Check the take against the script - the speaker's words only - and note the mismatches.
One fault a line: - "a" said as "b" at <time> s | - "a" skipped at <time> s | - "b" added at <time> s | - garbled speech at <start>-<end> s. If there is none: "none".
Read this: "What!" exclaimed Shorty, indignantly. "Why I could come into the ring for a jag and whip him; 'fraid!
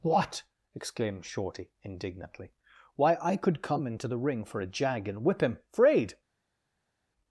none